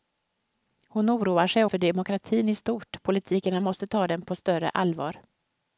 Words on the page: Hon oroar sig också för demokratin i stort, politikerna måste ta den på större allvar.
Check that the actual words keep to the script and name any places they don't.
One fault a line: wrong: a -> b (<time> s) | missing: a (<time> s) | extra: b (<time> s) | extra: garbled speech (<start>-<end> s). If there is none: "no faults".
missing: också (1.6 s)